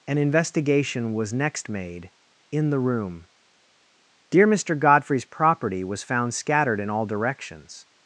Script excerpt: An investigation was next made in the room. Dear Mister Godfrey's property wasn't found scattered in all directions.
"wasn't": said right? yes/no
no